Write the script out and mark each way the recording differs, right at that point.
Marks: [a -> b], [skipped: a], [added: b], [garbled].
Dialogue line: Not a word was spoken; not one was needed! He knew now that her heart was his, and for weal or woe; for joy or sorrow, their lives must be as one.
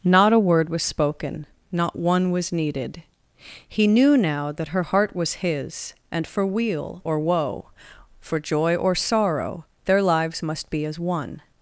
Not a word was spoken; not one was needed! He knew now that her heart was his, and for weal or woe; for joy or sorrow, their lives must be as one.